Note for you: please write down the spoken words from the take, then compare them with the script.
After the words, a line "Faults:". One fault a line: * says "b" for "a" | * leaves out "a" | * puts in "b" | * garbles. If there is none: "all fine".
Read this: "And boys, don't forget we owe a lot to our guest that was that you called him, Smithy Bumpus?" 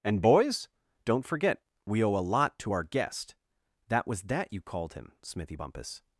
"And boys, don't forget we owe a lot to our guest that was that you called him, Smithy Bumpus?"
Faults:
all fine